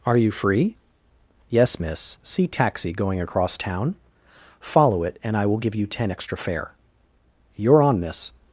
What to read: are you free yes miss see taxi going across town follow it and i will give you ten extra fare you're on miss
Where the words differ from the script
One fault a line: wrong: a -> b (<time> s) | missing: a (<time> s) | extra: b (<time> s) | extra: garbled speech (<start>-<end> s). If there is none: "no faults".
no faults